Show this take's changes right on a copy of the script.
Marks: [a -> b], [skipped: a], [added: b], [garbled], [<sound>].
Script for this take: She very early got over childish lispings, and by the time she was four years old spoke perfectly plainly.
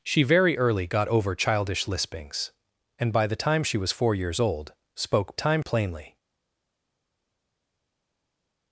She very early got over childish lispings, and by the time she was four years old spoke [perfectly -> time] plainly.